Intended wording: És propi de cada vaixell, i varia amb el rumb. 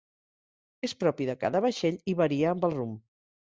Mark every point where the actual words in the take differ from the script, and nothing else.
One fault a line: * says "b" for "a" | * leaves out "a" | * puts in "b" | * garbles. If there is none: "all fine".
all fine